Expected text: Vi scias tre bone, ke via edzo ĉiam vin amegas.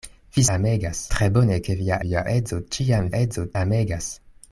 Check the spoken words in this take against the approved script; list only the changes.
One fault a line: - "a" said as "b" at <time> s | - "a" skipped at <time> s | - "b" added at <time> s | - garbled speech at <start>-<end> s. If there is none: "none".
- "scias" said as "amegas" at 0.5 s
- "via" added at 2.1 s
- "vin" said as "edzo" at 3.2 s